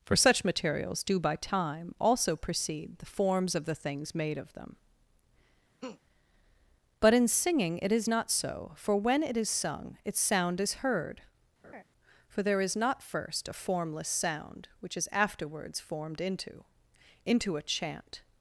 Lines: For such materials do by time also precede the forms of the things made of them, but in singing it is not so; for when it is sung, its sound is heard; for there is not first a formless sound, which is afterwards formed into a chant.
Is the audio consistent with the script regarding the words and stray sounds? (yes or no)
no